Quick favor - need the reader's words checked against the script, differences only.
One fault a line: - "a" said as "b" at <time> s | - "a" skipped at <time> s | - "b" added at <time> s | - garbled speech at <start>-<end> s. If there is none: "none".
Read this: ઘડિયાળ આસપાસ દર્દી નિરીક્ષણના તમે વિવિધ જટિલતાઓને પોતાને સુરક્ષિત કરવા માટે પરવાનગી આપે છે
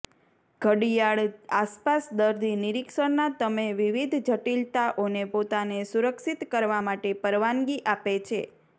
none